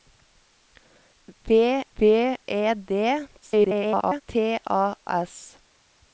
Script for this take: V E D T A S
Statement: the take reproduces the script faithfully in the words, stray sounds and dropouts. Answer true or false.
false